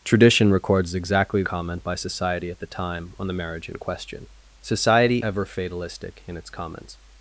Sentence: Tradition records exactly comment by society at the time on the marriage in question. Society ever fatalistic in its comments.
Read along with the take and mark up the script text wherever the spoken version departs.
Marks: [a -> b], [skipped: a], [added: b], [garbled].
Tradition records exactly comment by society at the time on the marriage in question. Society ever fatalistic in its comments.